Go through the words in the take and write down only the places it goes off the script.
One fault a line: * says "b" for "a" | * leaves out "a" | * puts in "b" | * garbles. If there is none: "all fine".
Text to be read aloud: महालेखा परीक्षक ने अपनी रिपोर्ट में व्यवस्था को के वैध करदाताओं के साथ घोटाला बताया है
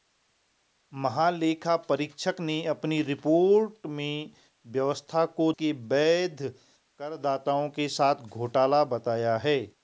all fine